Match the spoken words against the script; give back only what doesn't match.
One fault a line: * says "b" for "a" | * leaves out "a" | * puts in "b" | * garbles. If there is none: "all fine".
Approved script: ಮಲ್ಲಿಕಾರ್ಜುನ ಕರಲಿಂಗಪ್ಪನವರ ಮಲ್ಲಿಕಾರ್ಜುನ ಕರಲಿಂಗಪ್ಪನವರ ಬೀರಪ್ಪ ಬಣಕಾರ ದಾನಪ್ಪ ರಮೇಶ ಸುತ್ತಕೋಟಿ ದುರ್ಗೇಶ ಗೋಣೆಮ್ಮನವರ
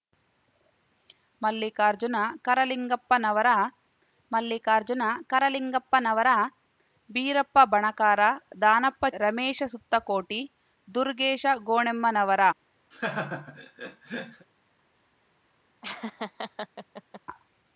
all fine